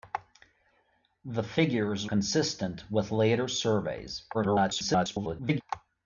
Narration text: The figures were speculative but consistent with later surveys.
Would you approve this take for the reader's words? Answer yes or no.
no